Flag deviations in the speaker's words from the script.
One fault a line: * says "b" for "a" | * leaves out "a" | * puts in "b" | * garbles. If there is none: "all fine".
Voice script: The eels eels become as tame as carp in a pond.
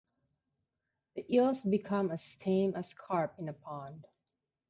* leaves out "eels"